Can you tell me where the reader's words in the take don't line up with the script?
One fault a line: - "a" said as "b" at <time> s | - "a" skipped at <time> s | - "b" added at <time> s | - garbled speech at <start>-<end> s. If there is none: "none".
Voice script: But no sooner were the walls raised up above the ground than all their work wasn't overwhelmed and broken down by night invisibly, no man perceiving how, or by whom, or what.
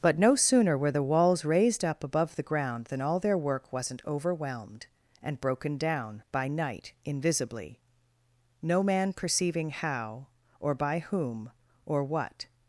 none